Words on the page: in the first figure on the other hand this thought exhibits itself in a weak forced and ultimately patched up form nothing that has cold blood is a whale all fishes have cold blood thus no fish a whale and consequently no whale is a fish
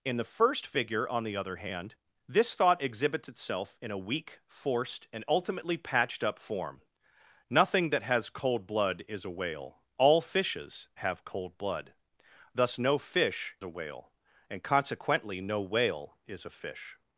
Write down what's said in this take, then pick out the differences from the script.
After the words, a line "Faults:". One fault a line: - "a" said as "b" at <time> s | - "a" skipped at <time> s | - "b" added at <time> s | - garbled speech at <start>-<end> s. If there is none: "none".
in the first figure on the other hand this thought exhibits itself in a weak forced and ultimately patched up form nothing that has cold blood is a whale all fishes have cold blood thus no fish a whale and consequently no whale is a fish
Faults:
none